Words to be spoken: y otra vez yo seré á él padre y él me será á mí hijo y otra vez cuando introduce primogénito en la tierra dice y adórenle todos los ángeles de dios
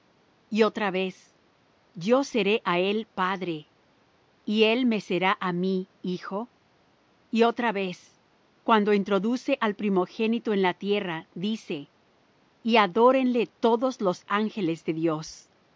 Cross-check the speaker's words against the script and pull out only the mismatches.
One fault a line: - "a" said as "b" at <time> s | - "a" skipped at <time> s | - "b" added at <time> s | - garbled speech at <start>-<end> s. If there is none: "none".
- "al" added at 9.6 s